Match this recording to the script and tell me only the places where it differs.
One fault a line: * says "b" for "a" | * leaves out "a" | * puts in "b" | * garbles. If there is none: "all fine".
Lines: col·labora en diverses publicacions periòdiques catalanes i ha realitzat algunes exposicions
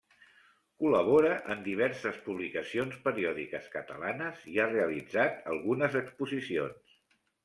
all fine